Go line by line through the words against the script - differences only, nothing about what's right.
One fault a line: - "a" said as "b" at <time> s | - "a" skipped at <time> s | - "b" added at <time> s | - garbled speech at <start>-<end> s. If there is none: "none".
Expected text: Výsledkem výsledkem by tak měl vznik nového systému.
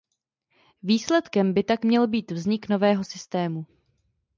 - "výsledkem" skipped at 1.5 s
- "být" added at 2.1 s